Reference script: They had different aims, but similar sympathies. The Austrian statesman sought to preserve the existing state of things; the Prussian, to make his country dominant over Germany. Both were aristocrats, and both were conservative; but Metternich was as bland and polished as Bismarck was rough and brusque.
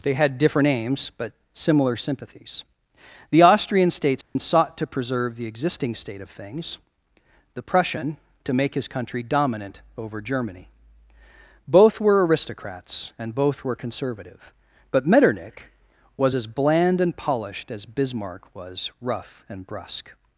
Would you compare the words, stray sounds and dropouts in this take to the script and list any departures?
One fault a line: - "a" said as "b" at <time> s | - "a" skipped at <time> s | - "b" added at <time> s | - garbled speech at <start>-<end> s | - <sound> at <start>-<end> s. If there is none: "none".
- dropout at 4.2-4.4 s